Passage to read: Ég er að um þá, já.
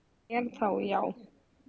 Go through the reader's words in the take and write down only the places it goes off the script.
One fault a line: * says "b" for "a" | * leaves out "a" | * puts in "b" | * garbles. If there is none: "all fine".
all fine